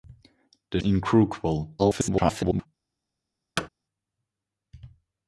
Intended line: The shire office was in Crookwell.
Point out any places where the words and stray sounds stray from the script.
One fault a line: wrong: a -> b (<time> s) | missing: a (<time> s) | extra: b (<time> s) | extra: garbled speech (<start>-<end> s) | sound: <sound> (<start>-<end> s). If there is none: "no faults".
missing: shire office was (0.8 s)
extra: garbled speech (1.8-2.7 s)
sound: thud (3.6-3.7 s)